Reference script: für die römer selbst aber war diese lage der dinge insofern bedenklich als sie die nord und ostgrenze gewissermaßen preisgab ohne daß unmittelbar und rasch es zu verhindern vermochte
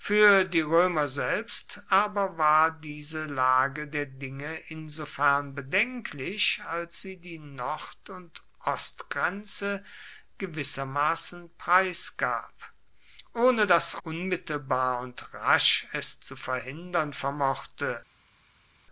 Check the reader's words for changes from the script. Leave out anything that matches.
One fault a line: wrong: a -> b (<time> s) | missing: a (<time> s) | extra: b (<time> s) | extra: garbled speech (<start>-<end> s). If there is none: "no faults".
no faults